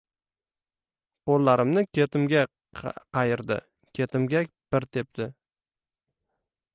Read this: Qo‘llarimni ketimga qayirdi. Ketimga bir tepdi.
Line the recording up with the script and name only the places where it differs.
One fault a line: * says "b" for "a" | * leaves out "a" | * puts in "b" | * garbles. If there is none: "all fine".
all fine